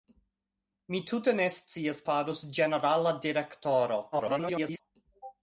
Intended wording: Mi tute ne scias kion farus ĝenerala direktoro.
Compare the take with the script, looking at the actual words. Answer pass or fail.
fail